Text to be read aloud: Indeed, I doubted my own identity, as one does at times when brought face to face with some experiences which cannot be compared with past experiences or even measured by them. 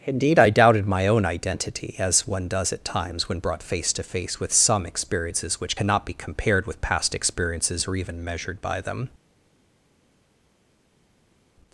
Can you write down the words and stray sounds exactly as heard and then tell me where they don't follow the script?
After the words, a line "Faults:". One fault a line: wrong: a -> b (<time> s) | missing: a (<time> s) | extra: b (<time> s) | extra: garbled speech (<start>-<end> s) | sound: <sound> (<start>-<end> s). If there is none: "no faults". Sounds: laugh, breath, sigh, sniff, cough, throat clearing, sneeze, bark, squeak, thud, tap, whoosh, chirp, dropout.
Indeed, I doubted my own identity, as one does at times when brought face to face with some experiences which cannot be compared with past experiences or even measured by them.
Faults:
no faults